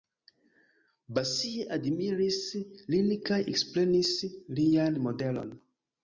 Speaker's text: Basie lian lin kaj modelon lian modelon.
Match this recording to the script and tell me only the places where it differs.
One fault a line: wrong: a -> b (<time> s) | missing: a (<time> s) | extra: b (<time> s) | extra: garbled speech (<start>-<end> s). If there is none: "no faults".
wrong: lian -> admiris (1.8 s)
wrong: modelon -> ekprenis (3.5 s)